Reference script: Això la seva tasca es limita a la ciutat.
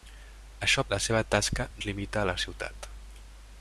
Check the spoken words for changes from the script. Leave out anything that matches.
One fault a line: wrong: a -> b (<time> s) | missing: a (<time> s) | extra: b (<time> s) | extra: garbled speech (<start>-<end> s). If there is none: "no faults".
no faults